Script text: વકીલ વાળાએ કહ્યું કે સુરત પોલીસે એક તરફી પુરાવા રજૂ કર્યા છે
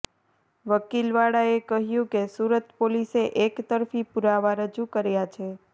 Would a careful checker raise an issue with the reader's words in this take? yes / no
no